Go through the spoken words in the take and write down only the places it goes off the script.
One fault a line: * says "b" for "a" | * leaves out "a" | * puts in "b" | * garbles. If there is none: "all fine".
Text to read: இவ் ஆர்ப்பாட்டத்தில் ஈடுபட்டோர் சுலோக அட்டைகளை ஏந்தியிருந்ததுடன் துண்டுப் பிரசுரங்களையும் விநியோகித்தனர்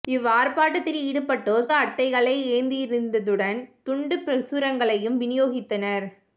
* leaves out "சுலோக"